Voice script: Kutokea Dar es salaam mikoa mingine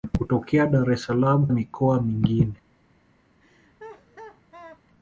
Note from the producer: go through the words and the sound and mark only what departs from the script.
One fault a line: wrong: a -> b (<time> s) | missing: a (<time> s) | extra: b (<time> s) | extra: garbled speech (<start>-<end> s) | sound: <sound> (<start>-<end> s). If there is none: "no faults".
sound: laugh (3.4-4.8 s)